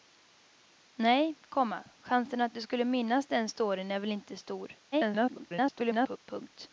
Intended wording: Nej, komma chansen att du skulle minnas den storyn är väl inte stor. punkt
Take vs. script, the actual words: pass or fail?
fail